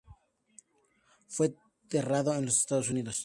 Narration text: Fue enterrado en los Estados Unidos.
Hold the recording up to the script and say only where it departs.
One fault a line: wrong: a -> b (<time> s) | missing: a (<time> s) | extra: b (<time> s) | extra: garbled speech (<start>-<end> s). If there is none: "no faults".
no faults